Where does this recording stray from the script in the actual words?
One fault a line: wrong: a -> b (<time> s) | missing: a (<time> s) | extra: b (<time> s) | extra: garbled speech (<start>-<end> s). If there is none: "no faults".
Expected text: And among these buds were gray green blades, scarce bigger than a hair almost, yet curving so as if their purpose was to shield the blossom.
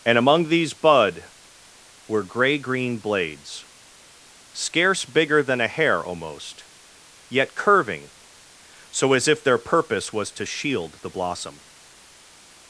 wrong: buds -> bud (0.7 s)